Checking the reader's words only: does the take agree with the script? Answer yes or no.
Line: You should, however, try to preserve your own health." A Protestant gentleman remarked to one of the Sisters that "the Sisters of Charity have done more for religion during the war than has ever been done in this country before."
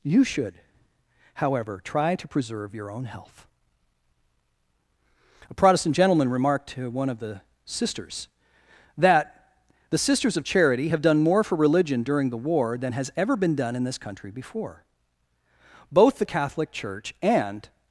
no